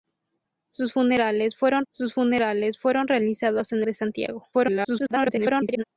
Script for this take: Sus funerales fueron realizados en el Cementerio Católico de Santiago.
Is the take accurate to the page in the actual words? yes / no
no